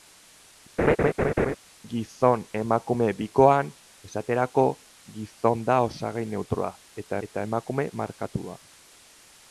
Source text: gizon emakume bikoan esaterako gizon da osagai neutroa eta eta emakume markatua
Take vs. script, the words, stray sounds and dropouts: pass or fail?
fail